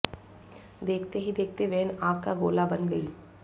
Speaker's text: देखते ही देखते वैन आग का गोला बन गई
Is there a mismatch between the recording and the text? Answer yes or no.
no